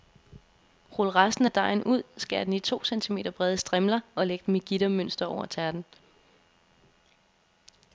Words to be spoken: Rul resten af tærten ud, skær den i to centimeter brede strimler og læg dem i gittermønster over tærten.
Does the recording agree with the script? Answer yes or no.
no